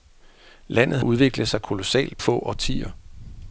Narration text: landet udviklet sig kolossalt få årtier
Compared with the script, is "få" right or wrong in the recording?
right